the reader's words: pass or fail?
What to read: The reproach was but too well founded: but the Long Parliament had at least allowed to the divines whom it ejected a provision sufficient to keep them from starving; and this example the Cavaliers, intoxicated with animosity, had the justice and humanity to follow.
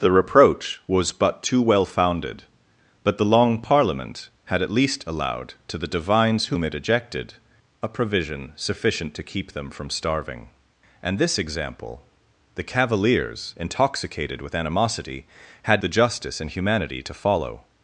pass